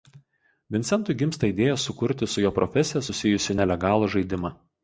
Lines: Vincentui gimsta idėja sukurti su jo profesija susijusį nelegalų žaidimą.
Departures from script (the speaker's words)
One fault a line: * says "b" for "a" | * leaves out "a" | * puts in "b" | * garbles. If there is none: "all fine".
all fine